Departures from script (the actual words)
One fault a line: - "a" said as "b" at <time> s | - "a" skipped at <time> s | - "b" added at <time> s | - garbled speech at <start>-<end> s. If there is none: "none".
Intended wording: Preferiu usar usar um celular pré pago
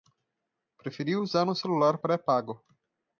- "usar" skipped at 1.5 s